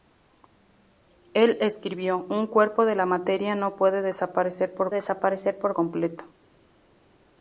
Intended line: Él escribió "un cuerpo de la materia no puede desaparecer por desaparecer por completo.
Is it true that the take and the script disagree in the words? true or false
false